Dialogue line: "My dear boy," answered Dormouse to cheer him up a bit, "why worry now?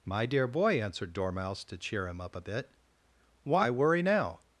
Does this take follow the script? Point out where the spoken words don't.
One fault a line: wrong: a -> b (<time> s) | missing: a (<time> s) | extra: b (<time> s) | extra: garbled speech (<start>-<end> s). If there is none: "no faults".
no faults